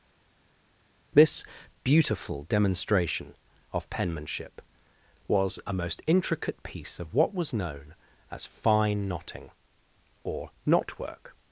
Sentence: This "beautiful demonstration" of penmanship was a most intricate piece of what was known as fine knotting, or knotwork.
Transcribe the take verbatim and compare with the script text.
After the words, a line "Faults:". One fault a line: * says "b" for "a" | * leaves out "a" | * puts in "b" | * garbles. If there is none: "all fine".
This "beautiful demonstration" of penmanship was a most intricate piece of what was known as fine knotting, or knotwork.
Faults:
all fine